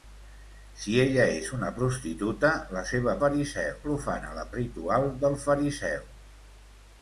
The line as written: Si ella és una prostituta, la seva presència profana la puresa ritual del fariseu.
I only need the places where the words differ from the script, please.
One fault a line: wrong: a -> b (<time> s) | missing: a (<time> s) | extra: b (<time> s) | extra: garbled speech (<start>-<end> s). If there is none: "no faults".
wrong: presència -> fariseu (3.2 s)
missing: puresa (4.5 s)